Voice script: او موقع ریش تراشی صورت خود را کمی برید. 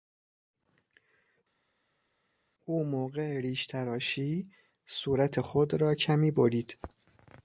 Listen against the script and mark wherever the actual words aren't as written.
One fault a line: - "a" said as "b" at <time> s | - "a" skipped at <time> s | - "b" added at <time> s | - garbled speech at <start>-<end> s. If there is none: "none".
none